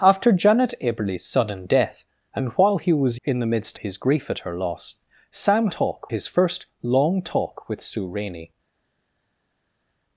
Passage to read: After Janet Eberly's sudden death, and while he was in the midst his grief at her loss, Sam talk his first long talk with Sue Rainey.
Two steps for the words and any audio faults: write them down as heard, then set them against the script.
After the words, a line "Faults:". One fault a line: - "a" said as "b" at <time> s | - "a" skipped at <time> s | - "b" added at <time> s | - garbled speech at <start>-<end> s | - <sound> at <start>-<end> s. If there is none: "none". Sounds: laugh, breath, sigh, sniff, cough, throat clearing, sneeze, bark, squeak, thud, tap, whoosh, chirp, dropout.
After Janet Eberly's sudden death, and while he was in the midst his grief at her loss, Sam talk his first long talk with Sue Rainey.
Faults:
none